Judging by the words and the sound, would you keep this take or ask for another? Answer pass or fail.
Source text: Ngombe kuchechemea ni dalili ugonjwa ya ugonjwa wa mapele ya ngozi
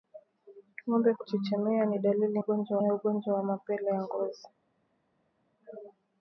pass